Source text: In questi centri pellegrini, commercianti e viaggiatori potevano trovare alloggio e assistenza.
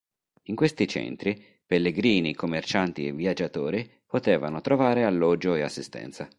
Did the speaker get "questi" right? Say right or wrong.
right